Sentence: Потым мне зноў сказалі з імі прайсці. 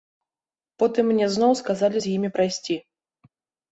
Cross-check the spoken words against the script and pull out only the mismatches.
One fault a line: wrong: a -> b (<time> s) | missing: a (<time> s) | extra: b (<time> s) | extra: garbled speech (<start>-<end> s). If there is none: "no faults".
no faults